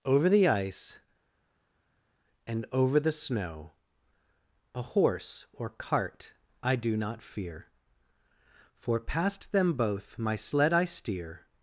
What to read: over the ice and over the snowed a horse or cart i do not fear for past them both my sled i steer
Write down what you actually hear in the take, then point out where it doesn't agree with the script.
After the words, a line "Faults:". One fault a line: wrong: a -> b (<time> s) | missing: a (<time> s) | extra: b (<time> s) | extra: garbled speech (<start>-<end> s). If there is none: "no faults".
over the ice and over the snow a horse or cart i do not fear for past them both my sled i steer
Faults:
wrong: snowed -> snow (3.2 s)